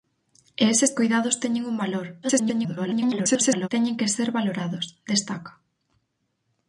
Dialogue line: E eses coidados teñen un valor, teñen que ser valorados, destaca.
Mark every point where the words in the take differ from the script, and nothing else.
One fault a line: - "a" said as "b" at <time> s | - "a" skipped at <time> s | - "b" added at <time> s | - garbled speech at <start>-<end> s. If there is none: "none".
- garbled speech at 2.2-3.7 s